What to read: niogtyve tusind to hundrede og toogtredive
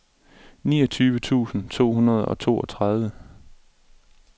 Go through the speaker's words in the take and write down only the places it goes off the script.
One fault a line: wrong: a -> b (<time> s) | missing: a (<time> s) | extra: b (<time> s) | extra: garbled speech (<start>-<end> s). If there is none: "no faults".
no faults